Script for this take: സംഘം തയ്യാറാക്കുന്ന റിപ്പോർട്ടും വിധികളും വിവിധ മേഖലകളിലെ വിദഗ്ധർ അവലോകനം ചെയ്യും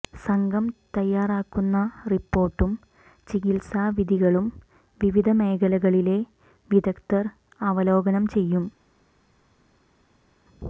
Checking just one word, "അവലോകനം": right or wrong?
right